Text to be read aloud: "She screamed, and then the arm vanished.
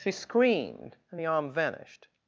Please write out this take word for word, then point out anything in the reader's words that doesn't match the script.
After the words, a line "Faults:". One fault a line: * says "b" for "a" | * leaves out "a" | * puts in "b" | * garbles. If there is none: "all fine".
"She screamed, and the arm vanished.
Faults:
* leaves out "then"